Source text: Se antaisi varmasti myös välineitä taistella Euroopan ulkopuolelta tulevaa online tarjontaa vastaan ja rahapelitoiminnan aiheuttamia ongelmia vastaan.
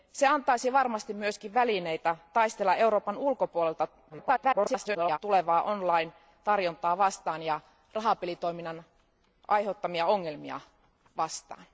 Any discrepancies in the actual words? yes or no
yes